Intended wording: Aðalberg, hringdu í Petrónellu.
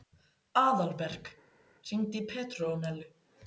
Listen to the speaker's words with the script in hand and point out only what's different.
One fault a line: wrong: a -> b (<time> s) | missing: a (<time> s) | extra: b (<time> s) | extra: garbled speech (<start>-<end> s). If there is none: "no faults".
no faults